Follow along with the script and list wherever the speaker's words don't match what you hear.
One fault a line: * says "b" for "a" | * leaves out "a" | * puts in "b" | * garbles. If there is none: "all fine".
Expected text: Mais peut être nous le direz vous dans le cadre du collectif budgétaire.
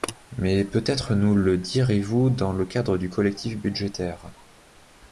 all fine